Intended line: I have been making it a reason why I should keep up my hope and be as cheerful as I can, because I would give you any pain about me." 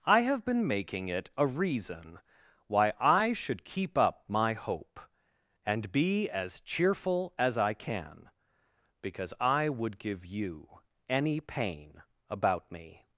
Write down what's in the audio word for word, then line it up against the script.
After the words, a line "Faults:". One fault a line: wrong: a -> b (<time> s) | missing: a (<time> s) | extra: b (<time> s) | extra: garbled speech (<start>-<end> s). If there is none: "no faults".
I have been making it a reason why I should keep up my hope and be as cheerful as I can, because I would give you any pain about me."
Faults:
no faults